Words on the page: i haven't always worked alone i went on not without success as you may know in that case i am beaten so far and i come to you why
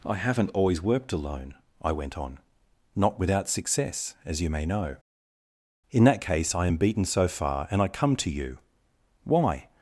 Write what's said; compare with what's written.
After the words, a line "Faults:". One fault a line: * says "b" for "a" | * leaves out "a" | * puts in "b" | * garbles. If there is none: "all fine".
i haven't always worked alone i went on not without success as you may know in that case i am beaten so far and i come to you why
Faults:
all fine